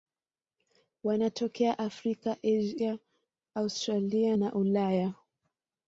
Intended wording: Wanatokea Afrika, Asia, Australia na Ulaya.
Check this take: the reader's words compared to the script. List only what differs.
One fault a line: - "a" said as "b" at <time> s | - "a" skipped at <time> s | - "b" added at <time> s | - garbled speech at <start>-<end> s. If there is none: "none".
none